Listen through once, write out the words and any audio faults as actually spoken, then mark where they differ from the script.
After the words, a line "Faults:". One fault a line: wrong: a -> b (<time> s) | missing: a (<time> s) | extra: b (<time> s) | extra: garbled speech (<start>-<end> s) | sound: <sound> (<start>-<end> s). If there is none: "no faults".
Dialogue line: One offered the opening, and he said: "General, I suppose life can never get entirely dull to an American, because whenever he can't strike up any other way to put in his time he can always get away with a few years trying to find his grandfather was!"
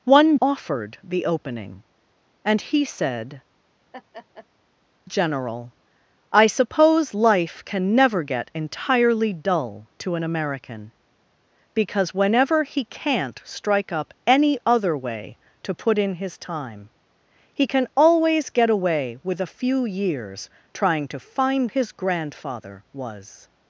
One offered the opening, and he said: "General, I suppose life can never get entirely dull to an American, because whenever he can't strike up any other way to put in his time he can always get away with a few years trying to find his grandfather was!"
Faults:
sound: laugh (3.9-4.5 s)